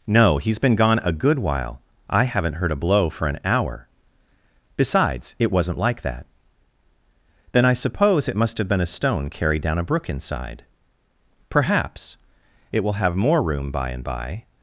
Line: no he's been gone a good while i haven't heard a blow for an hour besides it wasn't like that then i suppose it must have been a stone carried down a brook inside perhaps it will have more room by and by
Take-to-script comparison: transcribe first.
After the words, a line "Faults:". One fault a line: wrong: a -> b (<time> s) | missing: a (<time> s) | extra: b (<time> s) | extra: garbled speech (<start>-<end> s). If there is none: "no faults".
no he's been gone a good while i haven't heard a blow for an hour besides it wasn't like that then i suppose it must have been a stone carried down a brook inside perhaps it will have more room by and by
Faults:
no faults